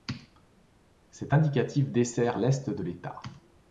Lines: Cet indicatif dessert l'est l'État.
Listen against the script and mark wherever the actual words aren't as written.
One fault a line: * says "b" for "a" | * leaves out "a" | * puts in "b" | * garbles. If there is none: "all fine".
* puts in "de"